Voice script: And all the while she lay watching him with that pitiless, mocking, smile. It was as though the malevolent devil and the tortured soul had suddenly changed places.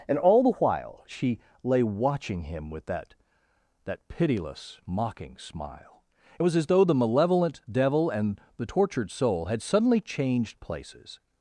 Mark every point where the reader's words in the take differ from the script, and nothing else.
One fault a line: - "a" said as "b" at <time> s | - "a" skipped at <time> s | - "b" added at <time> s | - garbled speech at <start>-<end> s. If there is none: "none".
- "that" added at 3.8 s